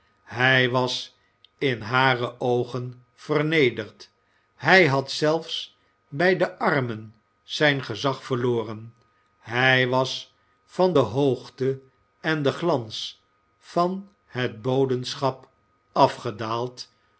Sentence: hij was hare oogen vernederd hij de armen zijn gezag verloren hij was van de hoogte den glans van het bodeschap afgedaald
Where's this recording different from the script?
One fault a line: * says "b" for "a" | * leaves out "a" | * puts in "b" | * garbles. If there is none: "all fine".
* puts in "in"
* puts in "had zelfs bij"
* puts in "en"